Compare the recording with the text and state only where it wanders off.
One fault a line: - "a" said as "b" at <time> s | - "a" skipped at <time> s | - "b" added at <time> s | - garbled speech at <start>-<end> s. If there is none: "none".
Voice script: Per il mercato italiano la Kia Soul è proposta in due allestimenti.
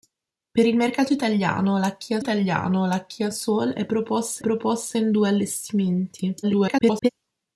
- "italiano la Kia" added at 2.2 s
- "proposta" added at 4.4 s
- garbled speech at 6.4-7.1 s